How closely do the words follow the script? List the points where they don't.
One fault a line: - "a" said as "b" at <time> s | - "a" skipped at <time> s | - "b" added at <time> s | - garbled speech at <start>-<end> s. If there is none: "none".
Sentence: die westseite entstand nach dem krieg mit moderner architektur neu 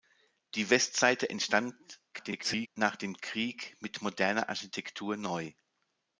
- garbled speech at 2.1-2.7 s